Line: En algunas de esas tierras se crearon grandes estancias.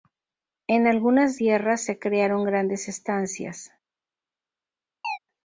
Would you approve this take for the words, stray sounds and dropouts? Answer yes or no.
no